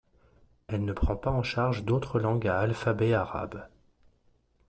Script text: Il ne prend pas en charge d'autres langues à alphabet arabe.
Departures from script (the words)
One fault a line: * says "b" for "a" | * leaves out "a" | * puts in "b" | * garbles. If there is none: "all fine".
* says "Elle" for "Il"